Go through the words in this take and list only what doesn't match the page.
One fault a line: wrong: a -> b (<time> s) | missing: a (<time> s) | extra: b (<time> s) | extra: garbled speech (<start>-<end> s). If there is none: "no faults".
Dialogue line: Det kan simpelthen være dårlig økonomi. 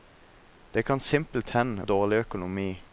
missing: være (1.8 s)